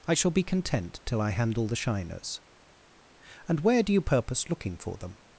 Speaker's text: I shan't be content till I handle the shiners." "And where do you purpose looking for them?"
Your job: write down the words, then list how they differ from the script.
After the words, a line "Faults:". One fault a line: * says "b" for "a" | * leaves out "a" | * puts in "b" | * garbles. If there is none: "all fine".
I shall be content till I handle the shiners." "And where do you purpose looking for them?"
Faults:
* says "shall" for "shan't"